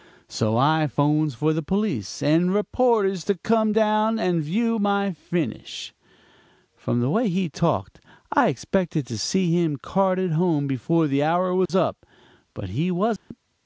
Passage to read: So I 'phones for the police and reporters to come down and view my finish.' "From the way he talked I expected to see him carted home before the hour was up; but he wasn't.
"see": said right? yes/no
yes